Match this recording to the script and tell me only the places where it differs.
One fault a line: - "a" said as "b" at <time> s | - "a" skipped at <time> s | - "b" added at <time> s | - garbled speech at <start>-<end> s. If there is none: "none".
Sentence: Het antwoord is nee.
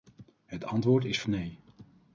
none